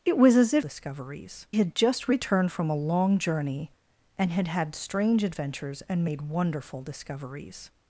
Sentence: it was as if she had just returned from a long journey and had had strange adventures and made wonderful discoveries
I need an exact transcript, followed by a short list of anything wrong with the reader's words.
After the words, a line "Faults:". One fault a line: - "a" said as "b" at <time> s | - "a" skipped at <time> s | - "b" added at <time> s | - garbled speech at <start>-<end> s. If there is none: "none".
it was as if discoveries had just returned from a long journey and had had strange adventures and made wonderful discoveries
Faults:
- "she" said as "discoveries" at 0.6 s